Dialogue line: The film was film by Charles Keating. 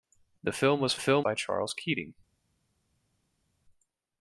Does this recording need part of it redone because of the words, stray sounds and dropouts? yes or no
no